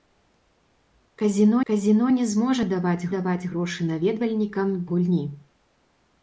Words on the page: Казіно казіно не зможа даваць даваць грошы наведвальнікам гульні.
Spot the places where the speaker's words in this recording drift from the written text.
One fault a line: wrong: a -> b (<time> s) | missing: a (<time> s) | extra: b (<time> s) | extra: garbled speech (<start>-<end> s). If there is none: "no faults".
no faults